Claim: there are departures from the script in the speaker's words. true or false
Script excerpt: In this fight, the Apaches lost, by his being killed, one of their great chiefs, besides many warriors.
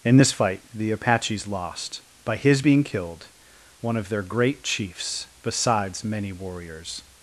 false